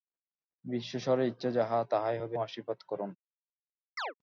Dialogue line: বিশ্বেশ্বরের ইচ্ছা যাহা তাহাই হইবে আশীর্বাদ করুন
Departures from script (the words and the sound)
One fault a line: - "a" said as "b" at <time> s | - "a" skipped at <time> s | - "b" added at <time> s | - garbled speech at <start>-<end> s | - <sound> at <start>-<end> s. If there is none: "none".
- chirp at 4.0-4.1 s